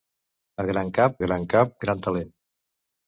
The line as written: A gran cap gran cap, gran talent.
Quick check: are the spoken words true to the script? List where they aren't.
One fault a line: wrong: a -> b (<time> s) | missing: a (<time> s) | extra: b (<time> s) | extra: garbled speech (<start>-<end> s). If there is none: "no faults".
no faults